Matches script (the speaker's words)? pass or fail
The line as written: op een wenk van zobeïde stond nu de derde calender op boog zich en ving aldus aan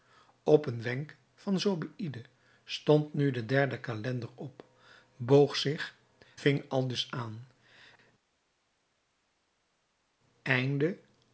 fail